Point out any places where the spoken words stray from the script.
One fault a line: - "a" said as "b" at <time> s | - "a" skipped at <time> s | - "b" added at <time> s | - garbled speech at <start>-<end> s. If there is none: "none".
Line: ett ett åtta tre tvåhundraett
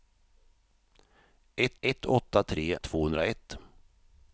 none